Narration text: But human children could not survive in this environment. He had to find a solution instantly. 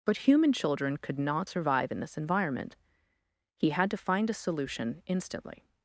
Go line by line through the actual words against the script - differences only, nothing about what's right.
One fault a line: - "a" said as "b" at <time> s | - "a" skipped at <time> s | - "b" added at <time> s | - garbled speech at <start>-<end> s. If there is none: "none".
none